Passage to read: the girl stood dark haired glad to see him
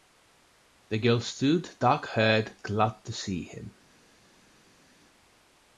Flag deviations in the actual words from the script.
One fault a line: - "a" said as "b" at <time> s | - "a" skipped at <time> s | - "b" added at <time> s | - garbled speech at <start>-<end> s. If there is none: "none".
none